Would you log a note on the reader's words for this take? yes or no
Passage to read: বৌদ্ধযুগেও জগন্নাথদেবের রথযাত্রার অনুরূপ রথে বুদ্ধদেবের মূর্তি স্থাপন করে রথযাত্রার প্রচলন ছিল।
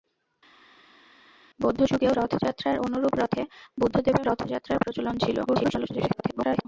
yes